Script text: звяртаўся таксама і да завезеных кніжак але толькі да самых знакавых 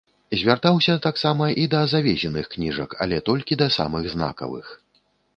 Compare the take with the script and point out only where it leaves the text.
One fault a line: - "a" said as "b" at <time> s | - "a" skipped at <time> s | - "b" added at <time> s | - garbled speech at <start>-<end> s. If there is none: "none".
none